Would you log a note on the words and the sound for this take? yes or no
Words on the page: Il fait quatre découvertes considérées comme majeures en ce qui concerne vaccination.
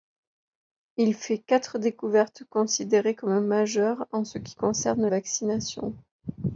no